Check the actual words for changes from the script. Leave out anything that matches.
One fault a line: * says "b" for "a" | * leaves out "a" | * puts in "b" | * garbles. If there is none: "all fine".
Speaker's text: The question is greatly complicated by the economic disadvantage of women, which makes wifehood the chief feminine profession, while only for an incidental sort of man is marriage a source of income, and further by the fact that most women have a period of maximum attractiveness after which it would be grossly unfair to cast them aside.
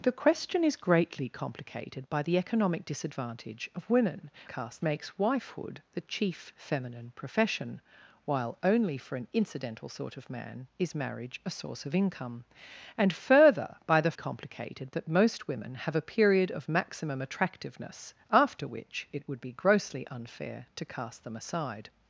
* says "cast" for "which"
* says "complicated" for "fact"